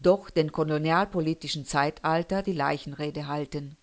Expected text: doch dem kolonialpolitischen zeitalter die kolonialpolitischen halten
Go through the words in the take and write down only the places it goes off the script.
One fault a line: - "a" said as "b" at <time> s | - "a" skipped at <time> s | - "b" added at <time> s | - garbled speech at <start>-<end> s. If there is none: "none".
- "kolonialpolitischen" said as "leichenrede" at 2.5 s